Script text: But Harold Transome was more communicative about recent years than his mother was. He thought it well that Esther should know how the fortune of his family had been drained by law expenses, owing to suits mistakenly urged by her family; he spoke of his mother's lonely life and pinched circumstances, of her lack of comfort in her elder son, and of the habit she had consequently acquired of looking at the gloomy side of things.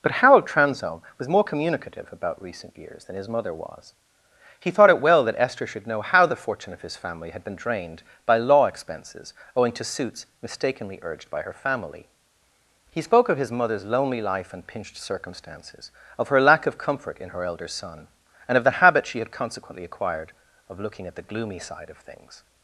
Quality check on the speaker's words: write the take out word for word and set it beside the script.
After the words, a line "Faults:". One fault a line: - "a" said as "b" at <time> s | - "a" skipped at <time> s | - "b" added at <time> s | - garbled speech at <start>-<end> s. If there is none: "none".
But Harold Transome was more communicative about recent years than his mother was. He thought it well that Esther should know how the fortune of his family had been drained by law expenses, owing to suits mistakenly urged by her family; he spoke of his mother's lonely life and pinched circumstances, of her lack of comfort in her elder son, and of the habit she had consequently acquired of looking at the gloomy side of things.
Faults:
none